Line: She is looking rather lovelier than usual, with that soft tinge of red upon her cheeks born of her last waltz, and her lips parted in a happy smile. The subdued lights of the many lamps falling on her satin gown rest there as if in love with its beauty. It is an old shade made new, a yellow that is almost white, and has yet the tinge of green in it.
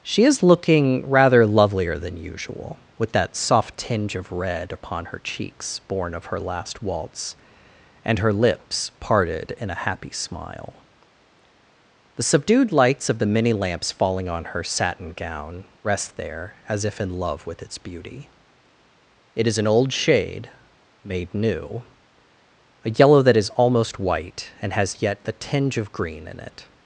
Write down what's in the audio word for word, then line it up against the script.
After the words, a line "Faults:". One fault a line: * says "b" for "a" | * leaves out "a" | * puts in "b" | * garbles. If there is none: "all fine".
She is looking rather lovelier than usual, with that soft tinge of red upon her cheeks born of her last waltz, and her lips parted in a happy smile. The subdued lights of the many lamps falling on her satin gown rest there as if in love with its beauty. It is an old shade made new, a yellow that is almost white, and has yet the tinge of green in it.
Faults:
all fine